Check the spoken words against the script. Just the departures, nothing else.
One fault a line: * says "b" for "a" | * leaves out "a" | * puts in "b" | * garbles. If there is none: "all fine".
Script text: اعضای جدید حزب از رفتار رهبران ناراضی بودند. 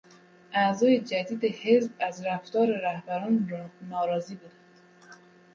all fine